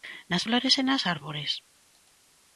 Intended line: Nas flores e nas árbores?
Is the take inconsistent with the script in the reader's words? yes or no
no